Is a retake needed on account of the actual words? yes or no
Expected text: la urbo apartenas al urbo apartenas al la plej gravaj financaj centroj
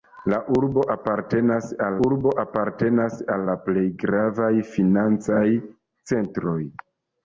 no